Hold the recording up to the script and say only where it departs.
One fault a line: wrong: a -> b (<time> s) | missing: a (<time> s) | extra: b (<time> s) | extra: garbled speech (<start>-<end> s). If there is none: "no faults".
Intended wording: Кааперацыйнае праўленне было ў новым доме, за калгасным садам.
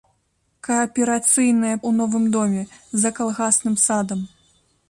missing: праўленне было (1.7 s)